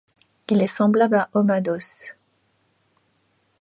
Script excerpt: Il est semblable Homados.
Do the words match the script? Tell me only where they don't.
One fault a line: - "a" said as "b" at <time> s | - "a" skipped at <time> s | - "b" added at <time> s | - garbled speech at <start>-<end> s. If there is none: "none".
- "à" added at 1.2 s